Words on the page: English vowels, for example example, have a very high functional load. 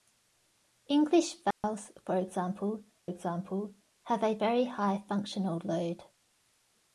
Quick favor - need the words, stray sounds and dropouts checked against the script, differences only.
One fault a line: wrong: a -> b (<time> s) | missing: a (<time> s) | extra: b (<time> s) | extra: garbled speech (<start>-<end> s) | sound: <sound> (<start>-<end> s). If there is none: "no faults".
sound: dropout (1.5-1.6 s)